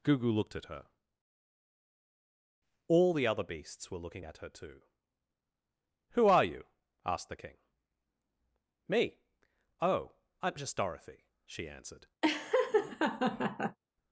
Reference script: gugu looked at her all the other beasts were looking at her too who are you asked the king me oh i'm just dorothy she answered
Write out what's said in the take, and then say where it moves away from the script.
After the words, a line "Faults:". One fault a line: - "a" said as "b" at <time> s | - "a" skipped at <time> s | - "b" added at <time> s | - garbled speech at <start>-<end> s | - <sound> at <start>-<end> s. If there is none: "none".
gugu looked at her all the other beasts were looking at her too who are you asked the king me oh i'm just dorothy she answered
Faults:
- laugh at 12.2-13.8 s